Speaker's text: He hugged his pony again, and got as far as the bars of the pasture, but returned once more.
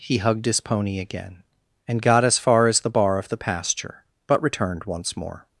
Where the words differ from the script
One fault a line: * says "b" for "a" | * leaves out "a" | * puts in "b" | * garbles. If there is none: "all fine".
* says "bar" for "bars"